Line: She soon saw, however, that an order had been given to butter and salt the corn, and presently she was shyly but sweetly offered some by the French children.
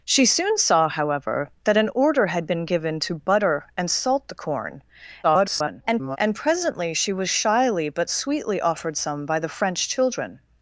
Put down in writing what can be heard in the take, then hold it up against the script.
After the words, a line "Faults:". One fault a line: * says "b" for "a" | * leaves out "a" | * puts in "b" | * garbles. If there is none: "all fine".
She soon saw, however, that an order had been given to butter and salt the corn, [garbled] and presently she was shyly but sweetly offered some by the French children.
Faults:
* garbles